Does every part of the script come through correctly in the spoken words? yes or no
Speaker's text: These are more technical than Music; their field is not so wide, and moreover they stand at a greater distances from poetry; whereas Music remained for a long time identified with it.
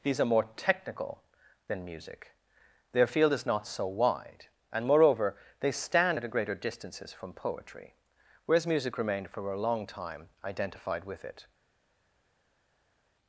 yes